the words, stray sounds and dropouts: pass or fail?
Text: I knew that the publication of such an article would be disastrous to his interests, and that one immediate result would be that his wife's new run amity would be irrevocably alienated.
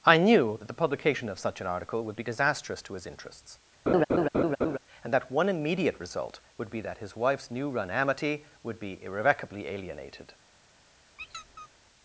fail